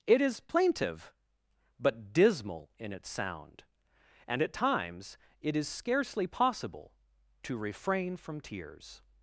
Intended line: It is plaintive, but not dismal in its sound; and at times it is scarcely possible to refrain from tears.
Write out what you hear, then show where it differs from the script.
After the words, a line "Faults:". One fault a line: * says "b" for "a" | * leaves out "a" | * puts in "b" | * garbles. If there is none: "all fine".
It is plaintive, but dismal in its sound; and at times it is scarcely possible to refrain from tears.
Faults:
* leaves out "not"